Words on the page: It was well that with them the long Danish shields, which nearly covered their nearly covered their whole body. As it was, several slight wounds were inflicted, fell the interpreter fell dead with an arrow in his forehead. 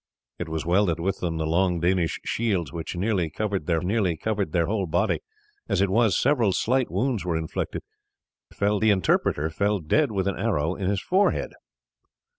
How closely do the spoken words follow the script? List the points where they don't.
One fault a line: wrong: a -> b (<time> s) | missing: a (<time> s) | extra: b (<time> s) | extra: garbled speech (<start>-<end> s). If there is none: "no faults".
no faults